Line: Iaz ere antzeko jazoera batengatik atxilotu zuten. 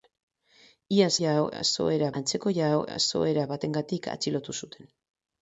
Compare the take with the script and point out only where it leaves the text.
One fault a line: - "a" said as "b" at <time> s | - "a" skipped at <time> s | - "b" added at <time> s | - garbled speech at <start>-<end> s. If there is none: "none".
- "ere" said as "jazoera" at 1.2 s